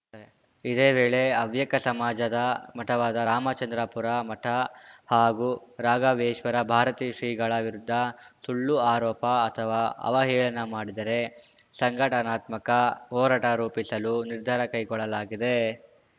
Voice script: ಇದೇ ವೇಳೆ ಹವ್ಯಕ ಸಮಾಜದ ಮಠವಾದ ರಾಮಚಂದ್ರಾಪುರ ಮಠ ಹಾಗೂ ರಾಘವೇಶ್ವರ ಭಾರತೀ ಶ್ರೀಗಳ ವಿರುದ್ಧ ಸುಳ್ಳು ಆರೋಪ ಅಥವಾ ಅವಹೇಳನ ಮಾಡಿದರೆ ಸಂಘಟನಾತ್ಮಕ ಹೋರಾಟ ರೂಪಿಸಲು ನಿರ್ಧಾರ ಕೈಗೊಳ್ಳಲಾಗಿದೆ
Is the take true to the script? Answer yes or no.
yes